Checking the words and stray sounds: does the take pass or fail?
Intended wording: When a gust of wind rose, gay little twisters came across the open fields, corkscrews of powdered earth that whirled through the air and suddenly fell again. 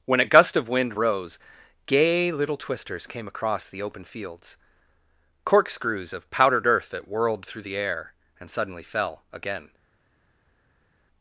pass